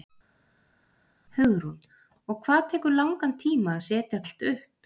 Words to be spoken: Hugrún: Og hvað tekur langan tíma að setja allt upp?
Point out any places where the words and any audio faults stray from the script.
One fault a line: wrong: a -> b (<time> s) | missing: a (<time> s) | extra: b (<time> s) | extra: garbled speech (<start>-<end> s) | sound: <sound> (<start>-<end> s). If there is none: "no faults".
no faults